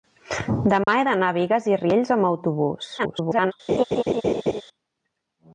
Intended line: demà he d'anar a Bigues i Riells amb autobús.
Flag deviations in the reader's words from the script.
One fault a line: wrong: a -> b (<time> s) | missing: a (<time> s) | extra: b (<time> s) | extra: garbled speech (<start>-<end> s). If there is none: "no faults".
extra: garbled speech (3.0-3.5 s)